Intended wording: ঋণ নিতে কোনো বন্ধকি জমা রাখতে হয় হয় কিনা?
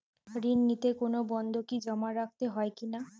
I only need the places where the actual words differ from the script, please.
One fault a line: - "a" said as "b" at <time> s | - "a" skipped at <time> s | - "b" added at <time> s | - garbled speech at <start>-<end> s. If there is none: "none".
- "হয়" skipped at 2.7 s